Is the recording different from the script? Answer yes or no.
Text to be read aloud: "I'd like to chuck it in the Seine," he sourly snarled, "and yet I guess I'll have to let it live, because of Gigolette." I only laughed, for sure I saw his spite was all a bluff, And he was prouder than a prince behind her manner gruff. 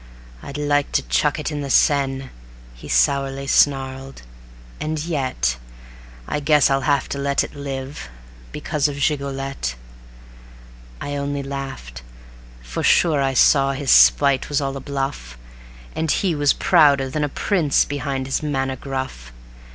yes